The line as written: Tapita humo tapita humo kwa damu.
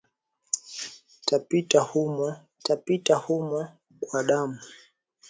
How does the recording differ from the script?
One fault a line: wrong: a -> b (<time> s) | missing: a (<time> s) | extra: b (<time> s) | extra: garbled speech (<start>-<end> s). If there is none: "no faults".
no faults